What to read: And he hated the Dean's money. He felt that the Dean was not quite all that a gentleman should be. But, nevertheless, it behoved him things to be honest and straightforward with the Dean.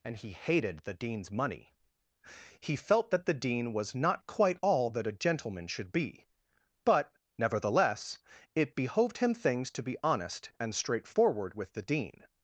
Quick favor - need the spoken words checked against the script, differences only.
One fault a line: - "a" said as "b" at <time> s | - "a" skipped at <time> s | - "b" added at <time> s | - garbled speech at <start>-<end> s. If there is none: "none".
none